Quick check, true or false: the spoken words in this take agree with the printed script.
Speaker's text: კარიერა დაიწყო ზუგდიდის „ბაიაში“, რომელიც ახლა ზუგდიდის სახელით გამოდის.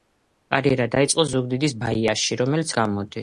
false